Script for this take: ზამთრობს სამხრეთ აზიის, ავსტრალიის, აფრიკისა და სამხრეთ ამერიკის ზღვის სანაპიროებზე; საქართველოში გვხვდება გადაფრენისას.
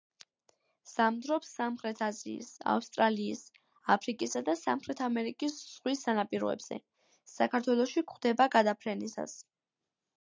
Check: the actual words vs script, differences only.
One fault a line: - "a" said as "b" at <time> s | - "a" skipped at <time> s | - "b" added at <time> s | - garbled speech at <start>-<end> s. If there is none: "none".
none